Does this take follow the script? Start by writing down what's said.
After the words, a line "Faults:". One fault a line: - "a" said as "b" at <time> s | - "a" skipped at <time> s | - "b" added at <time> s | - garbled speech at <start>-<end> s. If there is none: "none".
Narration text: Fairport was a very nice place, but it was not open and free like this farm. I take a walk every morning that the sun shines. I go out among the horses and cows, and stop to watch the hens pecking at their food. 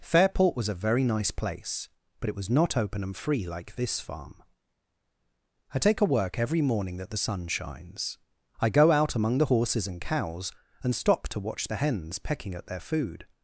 Fairport was a very nice place, but it was not open and free like this farm. I take a work every morning that the sun shines. I go out among the horses and cows, and stop to watch the hens pecking at their food.
Faults:
- "walk" said as "work" at 6.1 s